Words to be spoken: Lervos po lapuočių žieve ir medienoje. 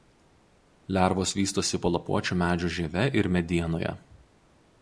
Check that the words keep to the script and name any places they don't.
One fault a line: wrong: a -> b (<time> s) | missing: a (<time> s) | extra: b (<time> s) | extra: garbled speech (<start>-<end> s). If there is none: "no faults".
extra: vystosi (1.4 s)
extra: medžių (2.4 s)